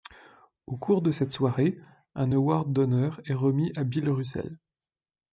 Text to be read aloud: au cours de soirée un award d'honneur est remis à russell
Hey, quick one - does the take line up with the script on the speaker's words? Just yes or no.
no